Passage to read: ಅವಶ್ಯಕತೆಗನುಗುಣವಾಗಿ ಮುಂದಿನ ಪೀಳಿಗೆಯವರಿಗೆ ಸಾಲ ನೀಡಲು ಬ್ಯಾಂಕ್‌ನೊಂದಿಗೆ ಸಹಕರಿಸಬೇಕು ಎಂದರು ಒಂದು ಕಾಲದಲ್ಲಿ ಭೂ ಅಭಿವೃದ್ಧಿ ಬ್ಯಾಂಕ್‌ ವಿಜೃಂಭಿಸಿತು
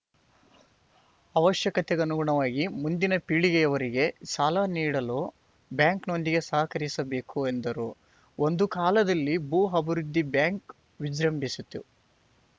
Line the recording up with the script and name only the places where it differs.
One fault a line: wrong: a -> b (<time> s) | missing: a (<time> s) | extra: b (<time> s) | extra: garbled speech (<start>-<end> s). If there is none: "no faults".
no faults